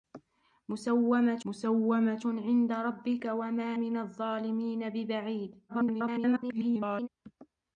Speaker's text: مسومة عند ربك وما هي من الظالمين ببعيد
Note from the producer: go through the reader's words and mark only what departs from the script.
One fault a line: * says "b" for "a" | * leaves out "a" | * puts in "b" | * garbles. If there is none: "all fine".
* puts in "مسومة"
* leaves out "هي"
* garbles